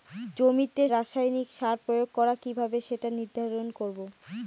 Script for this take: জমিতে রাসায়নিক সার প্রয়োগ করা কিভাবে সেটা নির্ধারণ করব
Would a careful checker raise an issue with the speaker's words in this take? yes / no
no